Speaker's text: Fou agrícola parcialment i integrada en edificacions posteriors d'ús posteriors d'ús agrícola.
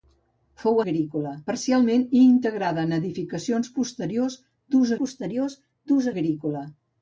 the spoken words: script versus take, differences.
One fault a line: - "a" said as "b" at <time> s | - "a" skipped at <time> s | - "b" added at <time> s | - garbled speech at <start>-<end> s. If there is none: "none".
none